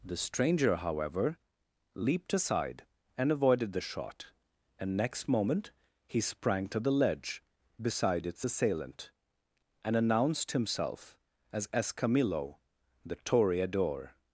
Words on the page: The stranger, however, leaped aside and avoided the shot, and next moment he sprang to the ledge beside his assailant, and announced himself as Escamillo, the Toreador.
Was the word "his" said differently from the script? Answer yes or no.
yes